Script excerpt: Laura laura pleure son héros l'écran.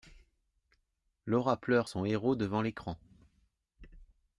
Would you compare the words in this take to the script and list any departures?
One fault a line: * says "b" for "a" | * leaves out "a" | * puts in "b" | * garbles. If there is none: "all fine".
* leaves out "laura"
* puts in "devant"